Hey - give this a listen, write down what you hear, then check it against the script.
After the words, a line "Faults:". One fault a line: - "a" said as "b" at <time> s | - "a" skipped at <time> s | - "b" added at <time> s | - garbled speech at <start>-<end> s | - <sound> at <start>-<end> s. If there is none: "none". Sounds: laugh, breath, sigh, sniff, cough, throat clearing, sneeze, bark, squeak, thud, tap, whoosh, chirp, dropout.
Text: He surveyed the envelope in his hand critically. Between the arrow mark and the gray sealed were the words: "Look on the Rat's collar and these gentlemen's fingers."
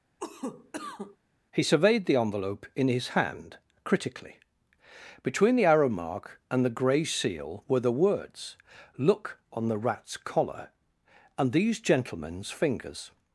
He surveyed the envelope in his hand critically. Between the arrow mark and the gray seal were the words: "Look on the Rat's collar and these gentlemen's fingers."
Faults:
- cough at 0.2-1.2 s
- "sealed" said as "seal" at 7.0 s